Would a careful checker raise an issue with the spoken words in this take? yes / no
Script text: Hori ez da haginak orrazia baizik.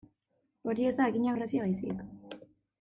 no